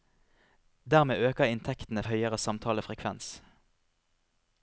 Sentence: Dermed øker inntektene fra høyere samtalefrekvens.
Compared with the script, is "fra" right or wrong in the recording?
wrong